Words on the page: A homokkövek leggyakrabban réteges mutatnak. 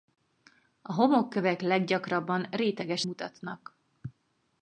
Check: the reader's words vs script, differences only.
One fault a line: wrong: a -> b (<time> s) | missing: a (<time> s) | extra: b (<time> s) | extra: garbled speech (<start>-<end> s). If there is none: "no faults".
no faults